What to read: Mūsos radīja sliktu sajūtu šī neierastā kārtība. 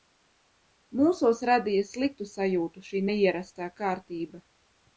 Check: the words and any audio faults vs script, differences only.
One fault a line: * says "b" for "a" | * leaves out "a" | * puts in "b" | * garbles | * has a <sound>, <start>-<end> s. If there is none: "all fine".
all fine